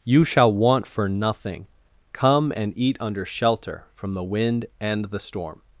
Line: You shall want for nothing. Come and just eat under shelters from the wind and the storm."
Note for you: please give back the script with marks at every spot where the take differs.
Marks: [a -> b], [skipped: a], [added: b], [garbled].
You shall want for nothing. Come and [skipped: just] eat under [shelters -> shelter] from the wind and the storm."